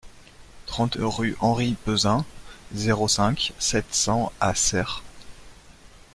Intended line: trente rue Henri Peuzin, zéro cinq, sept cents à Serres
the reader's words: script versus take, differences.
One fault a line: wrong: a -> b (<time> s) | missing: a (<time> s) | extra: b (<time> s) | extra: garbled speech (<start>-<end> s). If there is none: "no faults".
no faults